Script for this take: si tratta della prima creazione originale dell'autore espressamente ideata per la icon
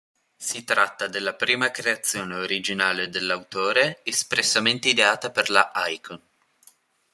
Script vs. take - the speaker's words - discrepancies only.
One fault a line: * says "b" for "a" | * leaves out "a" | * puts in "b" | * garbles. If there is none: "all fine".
all fine